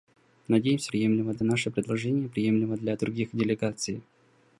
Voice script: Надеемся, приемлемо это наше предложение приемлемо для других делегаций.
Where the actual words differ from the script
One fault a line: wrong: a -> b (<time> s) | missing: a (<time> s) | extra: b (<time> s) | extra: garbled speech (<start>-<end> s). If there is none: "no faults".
no faults